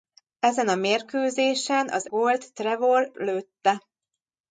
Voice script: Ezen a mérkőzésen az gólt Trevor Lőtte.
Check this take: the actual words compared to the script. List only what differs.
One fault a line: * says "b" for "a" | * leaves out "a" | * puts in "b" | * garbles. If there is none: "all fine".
all fine